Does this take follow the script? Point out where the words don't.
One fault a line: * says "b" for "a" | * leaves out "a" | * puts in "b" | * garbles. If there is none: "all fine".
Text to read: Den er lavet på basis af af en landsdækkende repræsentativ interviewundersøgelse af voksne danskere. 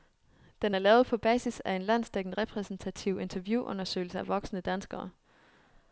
* leaves out "af"